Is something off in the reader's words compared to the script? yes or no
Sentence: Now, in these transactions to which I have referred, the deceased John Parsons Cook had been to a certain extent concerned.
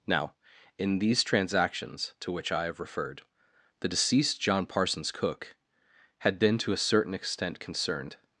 no